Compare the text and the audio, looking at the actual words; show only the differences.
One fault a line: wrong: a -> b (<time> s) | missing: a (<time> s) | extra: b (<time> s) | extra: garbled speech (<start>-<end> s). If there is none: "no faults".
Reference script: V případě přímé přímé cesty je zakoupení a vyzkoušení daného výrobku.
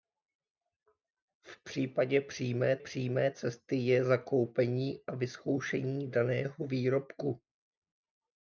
no faults